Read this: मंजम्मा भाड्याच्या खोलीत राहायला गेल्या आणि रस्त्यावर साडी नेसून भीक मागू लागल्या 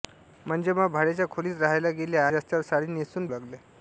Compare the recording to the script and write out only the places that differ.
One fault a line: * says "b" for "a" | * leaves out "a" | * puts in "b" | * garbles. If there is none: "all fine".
* leaves out "आणि"
* leaves out "भीक मागू"